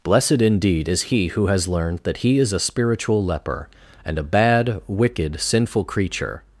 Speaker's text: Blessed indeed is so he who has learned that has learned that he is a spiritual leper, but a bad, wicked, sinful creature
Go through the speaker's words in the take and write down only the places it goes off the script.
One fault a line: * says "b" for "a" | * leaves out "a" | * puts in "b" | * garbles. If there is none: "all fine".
* leaves out "so"
* leaves out "has learned that"
* says "and" for "but"